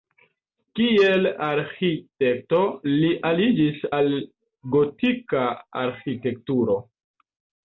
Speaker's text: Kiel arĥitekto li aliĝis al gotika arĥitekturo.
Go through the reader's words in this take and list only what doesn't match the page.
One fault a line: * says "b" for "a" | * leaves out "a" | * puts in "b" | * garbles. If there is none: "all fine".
all fine